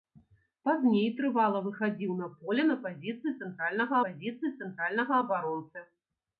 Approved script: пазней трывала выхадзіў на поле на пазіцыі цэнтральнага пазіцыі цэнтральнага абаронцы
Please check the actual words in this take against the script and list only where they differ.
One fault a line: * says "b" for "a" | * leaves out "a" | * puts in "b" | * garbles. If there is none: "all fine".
all fine